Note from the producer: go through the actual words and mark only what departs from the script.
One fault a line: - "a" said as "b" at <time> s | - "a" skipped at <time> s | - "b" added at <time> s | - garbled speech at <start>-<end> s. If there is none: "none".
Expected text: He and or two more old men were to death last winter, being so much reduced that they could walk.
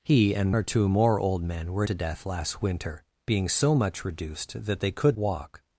none